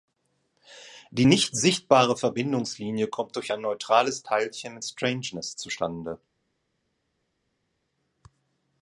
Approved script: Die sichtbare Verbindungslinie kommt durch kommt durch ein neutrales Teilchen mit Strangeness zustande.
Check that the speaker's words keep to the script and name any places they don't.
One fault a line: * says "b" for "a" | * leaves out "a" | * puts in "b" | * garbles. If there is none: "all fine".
* puts in "nicht"
* leaves out "kommt durch"